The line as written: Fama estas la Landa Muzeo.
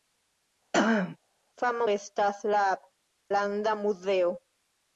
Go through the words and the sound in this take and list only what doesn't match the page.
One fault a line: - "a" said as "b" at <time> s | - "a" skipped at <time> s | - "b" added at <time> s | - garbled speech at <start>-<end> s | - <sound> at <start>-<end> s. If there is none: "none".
- throat clearing at 0.7-1.2 s